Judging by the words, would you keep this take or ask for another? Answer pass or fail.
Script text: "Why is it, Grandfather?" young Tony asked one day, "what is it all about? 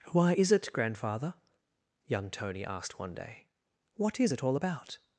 pass